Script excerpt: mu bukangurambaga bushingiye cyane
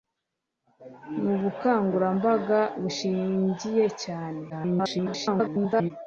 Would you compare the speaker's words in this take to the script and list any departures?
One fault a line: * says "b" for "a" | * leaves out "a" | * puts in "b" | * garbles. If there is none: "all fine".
* garbles